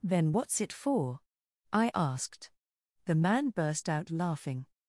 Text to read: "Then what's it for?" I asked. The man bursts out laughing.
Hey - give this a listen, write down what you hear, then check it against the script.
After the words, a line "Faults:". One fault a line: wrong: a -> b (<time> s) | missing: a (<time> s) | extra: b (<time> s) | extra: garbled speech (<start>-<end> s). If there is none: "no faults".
"Then what's it for?" I asked. The man burst out laughing.
Faults:
wrong: bursts -> burst (3.5 s)